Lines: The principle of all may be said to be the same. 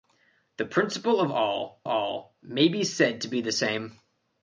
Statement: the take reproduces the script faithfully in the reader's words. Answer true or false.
false